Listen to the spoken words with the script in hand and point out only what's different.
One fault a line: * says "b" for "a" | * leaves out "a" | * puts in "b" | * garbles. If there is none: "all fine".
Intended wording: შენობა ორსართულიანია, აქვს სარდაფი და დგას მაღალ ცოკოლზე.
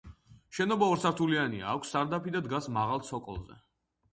all fine